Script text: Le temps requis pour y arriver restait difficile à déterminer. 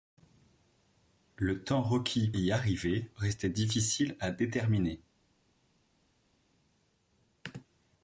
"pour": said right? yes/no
no